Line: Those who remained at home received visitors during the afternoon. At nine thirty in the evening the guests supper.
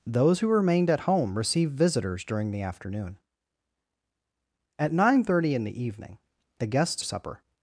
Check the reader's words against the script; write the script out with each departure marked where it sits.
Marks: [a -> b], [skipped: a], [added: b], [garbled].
Those who remained at home received visitors during the afternoon. At nine thirty in the evening the guests supper.